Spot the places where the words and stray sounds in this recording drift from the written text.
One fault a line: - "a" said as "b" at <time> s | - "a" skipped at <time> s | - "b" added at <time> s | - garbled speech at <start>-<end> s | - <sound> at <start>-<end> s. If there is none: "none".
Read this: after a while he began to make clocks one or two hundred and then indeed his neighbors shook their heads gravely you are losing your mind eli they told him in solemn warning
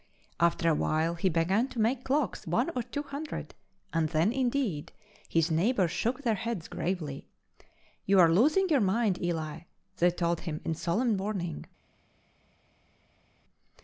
none